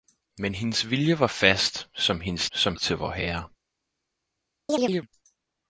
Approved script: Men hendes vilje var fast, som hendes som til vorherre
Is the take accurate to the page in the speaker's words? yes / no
yes